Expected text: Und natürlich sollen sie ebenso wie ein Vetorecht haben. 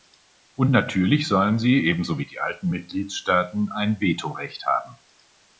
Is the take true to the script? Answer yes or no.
no